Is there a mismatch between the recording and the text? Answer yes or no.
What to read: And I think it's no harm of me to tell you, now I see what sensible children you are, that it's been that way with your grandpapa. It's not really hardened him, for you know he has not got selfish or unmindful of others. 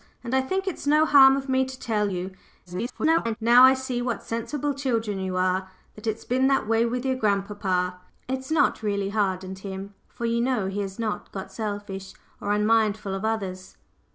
yes